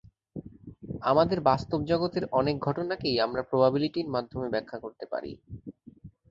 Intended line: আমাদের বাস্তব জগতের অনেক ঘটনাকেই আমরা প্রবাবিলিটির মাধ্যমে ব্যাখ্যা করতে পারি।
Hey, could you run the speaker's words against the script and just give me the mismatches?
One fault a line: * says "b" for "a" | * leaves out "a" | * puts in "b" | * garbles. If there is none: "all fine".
all fine